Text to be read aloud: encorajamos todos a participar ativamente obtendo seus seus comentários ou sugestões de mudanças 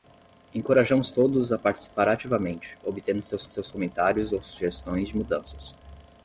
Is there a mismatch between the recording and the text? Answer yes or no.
no